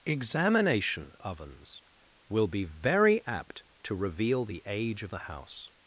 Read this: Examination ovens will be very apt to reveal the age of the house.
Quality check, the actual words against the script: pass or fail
pass